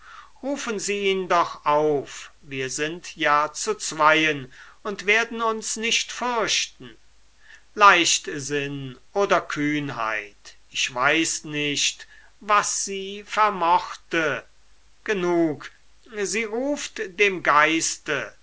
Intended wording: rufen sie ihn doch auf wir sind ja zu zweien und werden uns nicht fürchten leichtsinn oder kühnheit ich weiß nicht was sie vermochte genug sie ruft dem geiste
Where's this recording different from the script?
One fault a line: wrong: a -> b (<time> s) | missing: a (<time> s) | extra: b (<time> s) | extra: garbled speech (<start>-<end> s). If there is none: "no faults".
no faults